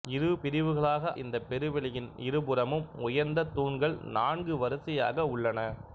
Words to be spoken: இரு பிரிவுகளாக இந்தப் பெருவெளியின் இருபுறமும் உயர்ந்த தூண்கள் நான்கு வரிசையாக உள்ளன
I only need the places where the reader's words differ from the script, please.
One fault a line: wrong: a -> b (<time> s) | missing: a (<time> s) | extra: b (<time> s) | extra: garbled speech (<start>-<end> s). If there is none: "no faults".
no faults